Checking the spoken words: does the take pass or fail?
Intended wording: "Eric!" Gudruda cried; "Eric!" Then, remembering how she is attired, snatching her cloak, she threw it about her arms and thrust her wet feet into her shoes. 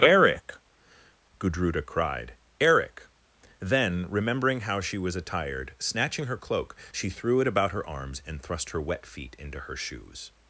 fail